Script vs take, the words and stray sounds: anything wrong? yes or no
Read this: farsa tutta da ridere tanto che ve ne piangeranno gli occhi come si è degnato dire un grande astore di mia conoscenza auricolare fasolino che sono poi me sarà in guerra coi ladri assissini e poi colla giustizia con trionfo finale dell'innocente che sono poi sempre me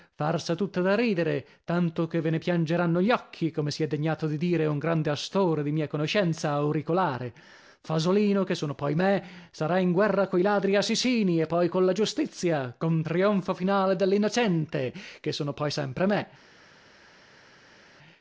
yes